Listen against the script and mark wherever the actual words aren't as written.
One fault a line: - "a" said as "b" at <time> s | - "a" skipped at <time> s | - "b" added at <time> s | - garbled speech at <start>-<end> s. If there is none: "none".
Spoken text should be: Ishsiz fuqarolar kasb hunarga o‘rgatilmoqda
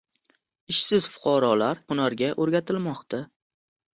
- "kasb" skipped at 1.8 s